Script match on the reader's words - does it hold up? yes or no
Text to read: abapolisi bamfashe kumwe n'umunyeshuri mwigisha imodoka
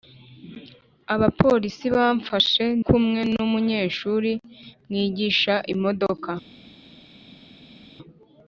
yes